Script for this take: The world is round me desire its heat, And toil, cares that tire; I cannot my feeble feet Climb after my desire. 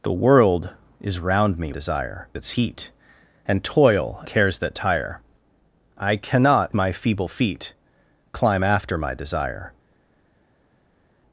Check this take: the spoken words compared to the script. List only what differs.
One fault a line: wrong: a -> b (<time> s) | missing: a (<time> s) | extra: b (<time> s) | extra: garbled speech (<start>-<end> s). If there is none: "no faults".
no faults